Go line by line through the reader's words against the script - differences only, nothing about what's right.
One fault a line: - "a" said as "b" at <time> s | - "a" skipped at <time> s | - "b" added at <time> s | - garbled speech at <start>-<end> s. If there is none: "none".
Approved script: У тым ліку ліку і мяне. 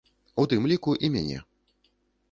- "ліку" skipped at 0.9 s